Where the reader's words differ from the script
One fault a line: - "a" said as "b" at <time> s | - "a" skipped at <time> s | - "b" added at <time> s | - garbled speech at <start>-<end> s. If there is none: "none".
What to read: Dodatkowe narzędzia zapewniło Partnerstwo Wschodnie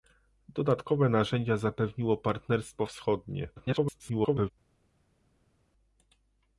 - garbled speech at 3.6-4.5 s